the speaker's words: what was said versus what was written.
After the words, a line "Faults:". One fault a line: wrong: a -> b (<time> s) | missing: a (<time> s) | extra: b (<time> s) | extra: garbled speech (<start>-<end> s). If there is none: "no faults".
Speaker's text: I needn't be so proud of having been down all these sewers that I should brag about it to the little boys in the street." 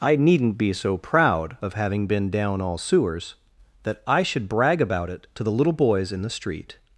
I needn't be so proud of having been down all sewers that I should brag about it to the little boys in the street."
Faults:
missing: these (2.8 s)